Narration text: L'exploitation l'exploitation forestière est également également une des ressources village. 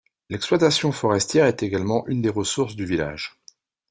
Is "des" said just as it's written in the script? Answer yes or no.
yes